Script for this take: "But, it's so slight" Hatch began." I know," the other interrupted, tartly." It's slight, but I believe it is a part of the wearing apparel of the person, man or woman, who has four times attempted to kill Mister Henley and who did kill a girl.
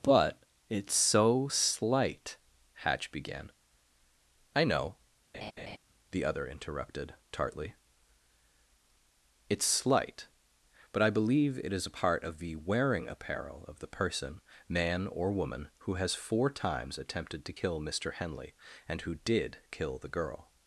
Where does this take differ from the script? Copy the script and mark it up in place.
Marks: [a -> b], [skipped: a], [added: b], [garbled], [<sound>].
"But, it's so slight" Hatch began." I know," [laugh] the other interrupted, tartly." It's slight, but I believe it is a part of the wearing apparel of the person, man or woman, who has four times attempted to kill Mister Henley and who did kill [a -> the] girl.